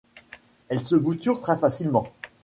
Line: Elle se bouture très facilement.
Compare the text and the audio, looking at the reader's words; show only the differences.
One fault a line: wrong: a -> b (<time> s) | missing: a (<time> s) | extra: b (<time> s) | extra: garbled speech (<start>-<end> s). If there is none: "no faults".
no faults